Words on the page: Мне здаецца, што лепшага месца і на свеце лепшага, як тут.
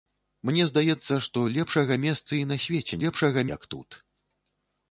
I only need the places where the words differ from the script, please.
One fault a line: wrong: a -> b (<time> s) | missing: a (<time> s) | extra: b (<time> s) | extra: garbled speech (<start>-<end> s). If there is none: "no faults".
no faults